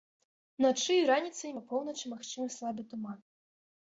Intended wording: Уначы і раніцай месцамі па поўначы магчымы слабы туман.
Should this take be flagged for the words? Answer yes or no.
yes